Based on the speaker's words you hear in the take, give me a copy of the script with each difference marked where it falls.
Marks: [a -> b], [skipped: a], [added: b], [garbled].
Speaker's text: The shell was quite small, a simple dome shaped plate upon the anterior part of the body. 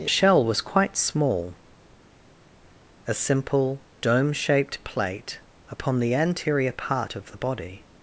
The shell was quite small, a simple dome shaped plate upon the anterior part of the body.